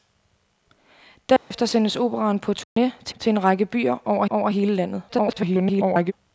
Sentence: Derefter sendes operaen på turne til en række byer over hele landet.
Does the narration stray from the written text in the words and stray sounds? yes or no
yes